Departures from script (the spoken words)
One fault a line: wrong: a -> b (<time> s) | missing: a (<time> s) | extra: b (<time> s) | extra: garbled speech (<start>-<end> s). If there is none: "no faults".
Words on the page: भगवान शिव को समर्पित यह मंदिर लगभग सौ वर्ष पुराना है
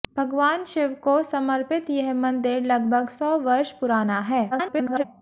extra: garbled speech (4.5-5.0 s)